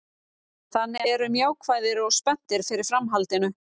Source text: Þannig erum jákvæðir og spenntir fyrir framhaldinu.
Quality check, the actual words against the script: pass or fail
pass